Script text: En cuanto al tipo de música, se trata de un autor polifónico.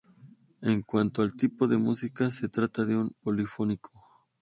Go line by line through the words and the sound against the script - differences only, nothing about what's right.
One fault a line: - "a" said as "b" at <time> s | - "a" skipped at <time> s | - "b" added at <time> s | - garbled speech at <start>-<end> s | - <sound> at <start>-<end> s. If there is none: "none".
- "autor" skipped at 3.2 s